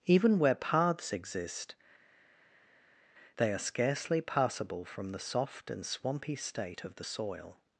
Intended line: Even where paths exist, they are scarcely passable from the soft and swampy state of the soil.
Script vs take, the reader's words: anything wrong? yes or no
no